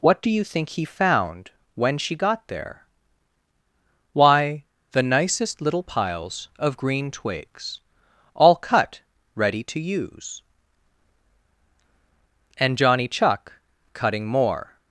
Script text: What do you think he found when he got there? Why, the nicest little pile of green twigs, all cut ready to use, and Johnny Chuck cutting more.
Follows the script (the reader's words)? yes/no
no